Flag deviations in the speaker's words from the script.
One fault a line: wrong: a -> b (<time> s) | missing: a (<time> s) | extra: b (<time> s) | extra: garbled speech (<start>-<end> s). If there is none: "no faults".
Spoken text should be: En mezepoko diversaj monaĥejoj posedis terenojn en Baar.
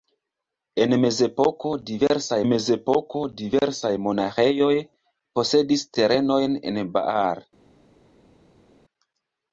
extra: mezepoko diversaj (2.5 s)